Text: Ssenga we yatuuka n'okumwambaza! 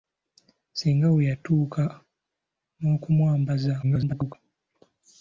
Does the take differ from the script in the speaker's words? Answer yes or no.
yes